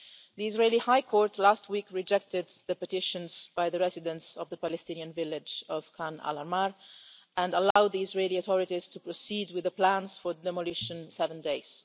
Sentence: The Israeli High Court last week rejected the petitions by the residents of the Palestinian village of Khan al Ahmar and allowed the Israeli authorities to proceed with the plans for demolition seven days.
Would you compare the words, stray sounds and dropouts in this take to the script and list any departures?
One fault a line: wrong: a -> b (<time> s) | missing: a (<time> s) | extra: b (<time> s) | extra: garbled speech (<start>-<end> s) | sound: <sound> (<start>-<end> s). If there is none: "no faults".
sound: dropout (7.7-7.8 s)